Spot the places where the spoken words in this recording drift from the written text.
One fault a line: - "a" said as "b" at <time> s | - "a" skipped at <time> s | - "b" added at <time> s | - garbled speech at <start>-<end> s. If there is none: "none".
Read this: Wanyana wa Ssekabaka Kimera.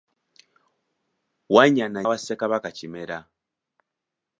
none